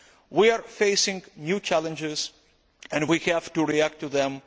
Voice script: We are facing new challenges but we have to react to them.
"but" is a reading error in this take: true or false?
true